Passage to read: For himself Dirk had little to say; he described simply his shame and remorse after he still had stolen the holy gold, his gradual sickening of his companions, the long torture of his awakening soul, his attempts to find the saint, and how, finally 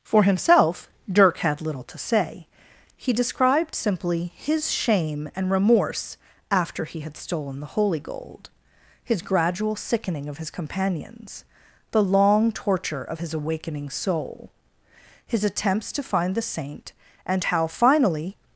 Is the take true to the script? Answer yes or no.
no